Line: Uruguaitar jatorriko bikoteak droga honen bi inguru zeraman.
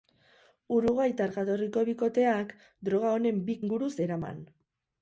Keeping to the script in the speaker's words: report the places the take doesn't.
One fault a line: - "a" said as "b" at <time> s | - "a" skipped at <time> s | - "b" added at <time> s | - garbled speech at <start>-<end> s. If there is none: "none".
none